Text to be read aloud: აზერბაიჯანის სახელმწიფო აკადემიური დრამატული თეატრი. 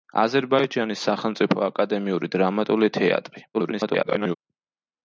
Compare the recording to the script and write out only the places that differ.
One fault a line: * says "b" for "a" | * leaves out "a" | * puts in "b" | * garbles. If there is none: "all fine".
* garbles